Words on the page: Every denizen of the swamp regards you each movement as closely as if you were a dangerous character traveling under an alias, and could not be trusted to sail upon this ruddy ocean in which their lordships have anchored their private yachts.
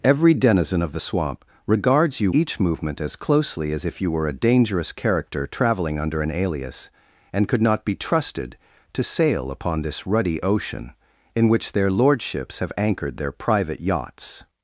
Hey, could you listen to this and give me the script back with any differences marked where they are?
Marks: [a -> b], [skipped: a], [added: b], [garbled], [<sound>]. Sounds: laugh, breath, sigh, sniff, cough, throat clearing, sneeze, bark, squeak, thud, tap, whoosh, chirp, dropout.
Every denizen of the swamp regards you each movement as closely as if you were a dangerous character traveling under an alias, and could not be trusted to sail upon this ruddy ocean in which their lordships have anchored their private yachts.